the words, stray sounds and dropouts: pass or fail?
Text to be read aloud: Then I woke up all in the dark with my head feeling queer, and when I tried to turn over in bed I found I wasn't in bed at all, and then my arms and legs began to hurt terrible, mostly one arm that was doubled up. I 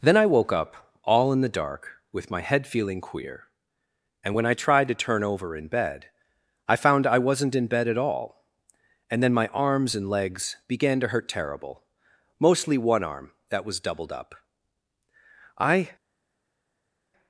pass